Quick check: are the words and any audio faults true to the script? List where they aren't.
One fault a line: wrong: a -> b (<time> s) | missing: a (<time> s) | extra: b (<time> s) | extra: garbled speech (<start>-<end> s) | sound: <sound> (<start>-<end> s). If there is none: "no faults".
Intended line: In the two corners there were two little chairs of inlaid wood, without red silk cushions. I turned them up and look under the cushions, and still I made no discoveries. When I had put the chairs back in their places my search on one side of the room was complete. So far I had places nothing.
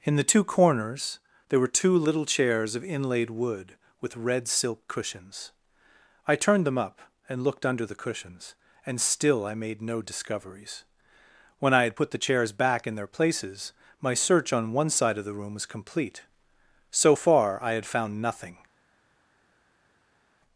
wrong: without -> with (4.0 s)
wrong: look -> looked (7.4 s)
wrong: places -> found (17.9 s)